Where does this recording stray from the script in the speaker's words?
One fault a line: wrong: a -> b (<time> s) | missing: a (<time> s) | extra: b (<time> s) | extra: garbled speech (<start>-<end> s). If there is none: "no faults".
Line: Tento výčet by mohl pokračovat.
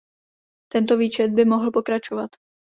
no faults